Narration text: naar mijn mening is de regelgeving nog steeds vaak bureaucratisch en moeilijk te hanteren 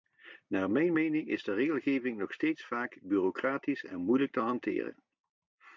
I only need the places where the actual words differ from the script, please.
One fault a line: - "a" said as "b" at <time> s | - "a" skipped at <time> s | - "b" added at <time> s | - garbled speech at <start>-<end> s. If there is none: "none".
none